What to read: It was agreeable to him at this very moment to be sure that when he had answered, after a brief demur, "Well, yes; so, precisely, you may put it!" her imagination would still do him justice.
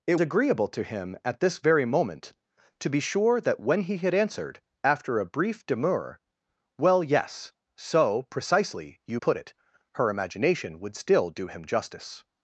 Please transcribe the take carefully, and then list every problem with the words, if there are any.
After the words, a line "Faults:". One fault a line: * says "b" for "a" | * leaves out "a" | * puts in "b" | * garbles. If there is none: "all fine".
It agreeable to him at this very moment to be sure that when he had answered, after a brief demur, "Well, yes; so, precisely, you put it!" her imagination would still do him justice.
Faults:
* leaves out "was"
* leaves out "may"